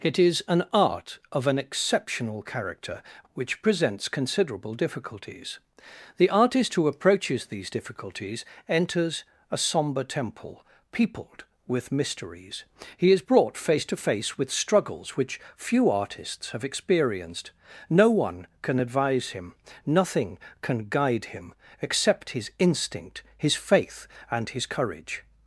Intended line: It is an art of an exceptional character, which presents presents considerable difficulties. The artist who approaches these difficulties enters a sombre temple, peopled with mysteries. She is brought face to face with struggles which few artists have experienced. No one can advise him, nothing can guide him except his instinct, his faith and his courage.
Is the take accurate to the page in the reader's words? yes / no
no